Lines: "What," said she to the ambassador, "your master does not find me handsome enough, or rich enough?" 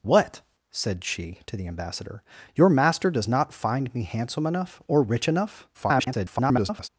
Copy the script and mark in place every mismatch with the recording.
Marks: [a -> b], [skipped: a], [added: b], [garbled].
"What," said she to the ambassador, "your master does not find me handsome enough, or rich enough?" [garbled]